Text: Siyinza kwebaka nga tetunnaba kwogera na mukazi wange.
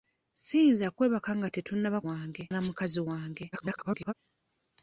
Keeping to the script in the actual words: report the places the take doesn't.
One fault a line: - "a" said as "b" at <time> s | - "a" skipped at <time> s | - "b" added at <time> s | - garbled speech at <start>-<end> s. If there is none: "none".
- "kwogera" said as "wange" at 2.1 s
- garbled speech at 3.5-4.1 s